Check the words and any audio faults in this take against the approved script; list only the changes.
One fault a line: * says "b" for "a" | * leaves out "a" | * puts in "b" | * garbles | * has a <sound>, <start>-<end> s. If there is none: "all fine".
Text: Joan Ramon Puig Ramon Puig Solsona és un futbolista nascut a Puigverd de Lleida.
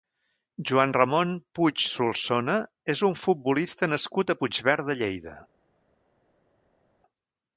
* leaves out "Ramon Puig"